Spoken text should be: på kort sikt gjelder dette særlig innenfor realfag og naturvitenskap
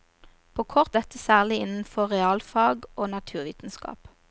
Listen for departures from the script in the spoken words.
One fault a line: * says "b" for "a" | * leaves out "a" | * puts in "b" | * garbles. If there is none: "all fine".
* leaves out "sikt gjelder"